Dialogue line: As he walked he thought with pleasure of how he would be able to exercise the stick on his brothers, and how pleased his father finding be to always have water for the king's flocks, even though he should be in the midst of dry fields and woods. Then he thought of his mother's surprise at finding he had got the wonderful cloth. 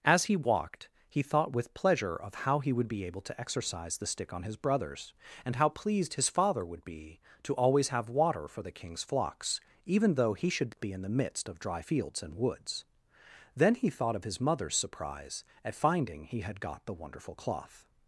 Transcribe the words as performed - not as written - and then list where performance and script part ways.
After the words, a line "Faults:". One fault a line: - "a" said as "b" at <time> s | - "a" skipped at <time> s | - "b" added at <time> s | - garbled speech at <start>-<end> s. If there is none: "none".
As he walked he thought with pleasure of how he would be able to exercise the stick on his brothers, and how pleased his father would be to always have water for the king's flocks, even though he should be in the midst of dry fields and woods. Then he thought of his mother's surprise at finding he had got the wonderful cloth.
Faults:
- "finding" said as "would" at 6.7 s